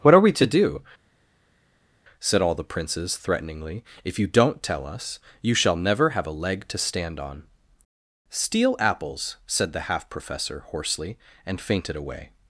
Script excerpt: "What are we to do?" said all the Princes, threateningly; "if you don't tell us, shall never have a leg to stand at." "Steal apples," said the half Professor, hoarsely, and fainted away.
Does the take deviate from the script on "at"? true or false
true